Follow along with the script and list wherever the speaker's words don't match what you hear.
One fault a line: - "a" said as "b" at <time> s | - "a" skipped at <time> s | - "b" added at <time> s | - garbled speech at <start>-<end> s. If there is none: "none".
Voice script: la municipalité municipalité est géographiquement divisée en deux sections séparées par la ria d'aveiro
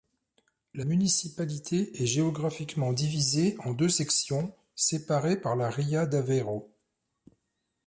- "municipalité" skipped at 2.0 s